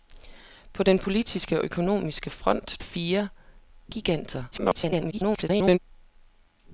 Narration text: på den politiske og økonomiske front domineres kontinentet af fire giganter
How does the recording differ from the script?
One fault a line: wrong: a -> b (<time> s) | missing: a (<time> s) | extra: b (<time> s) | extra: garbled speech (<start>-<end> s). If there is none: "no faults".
missing: domineres kontinentet af (2.8 s)
extra: garbled speech (4.5-5.8 s)